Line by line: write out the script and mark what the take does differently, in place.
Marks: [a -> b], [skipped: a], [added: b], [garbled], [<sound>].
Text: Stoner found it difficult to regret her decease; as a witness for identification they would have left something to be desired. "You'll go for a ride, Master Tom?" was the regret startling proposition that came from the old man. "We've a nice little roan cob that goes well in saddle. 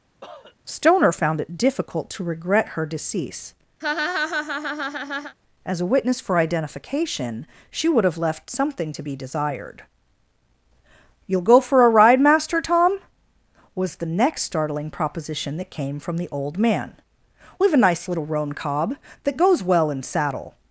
[cough] Stoner found it difficult to regret her decease; [laugh] as a witness for identification [they -> she] would have left something to be desired. "You'll go for a ride, Master Tom?" was the [regret -> next] startling proposition that came from the old man. "We've a nice little roan cob that goes well in saddle.